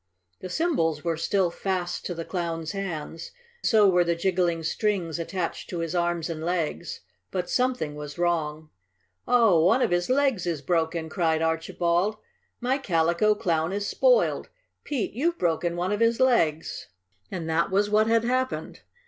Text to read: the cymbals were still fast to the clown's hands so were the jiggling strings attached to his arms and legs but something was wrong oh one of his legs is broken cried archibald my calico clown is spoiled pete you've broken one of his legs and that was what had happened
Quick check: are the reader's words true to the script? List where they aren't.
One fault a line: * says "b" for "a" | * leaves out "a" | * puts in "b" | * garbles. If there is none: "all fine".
all fine